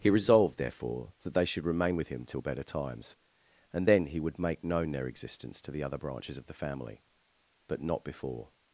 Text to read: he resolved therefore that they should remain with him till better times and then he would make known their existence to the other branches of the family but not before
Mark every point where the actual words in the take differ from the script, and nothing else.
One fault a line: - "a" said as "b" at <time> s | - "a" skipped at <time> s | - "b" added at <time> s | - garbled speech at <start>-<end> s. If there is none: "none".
none